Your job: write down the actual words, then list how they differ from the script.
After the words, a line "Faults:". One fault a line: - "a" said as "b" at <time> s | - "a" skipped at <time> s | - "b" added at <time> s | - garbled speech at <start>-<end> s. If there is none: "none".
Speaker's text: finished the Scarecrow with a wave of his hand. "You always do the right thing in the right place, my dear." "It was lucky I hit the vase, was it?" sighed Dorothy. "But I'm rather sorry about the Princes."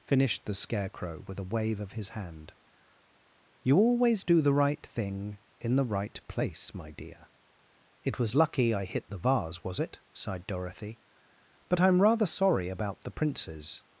finished the Scarecrow with a wave of his hand. "You always do the right thing in the right place, my dear." "It was lucky I hit the vase, was it?" sighed Dorothy. "But I'm rather sorry about the Princes."
Faults:
none